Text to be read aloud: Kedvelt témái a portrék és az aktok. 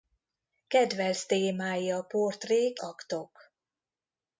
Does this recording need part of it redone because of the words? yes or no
yes